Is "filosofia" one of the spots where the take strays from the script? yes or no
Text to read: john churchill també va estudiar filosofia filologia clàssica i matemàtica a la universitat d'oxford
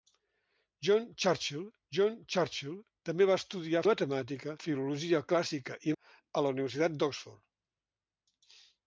yes